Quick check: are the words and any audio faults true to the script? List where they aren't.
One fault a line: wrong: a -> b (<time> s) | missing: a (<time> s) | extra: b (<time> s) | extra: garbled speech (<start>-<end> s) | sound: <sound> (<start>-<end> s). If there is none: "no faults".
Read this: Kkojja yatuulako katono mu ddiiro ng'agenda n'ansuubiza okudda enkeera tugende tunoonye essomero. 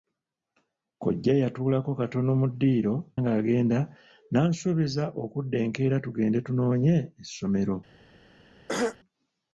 sound: throat clearing (8.7-9.0 s)